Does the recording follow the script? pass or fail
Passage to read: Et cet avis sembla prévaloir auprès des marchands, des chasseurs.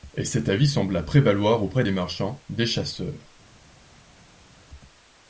pass